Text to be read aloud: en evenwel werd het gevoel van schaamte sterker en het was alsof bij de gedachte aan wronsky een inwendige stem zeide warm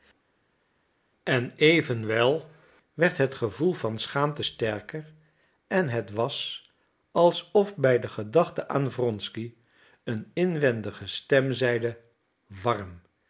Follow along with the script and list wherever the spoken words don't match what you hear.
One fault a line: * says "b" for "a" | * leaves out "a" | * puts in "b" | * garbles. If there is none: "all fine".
all fine